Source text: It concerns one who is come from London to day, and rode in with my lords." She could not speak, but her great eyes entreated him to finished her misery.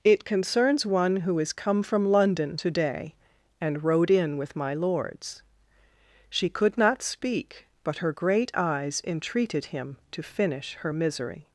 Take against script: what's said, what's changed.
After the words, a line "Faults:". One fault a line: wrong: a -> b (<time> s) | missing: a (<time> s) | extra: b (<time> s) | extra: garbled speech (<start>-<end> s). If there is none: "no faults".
It concerns one who is come from London to day, and rode in with my lords." She could not speak, but her great eyes entreated him to finish her misery.
Faults:
wrong: finished -> finish (10.2 s)